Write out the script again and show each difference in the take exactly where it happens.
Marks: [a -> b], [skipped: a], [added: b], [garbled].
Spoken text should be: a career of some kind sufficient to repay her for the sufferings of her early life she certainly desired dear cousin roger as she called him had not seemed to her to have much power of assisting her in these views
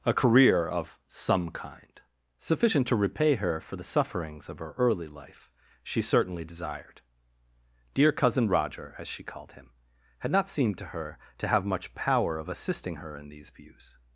a career of some kind sufficient to repay her for the sufferings of her early life she certainly desired dear cousin roger as she called him had not seemed to her to have much power of assisting her in these views